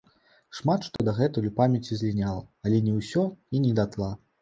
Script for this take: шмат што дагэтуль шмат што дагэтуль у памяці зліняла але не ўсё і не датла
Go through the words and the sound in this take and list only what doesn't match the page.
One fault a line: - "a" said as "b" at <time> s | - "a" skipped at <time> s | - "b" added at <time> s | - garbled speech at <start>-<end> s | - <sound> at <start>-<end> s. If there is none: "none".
- dropout at 1.0-1.0 s
- "шмат што дагэтуль" skipped at 1.5 s